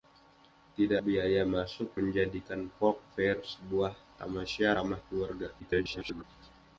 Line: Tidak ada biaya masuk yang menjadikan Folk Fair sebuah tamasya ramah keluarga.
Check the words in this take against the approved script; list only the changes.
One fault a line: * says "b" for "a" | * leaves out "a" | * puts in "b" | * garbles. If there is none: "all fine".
* leaves out "ada"
* leaves out "yang"
* garbles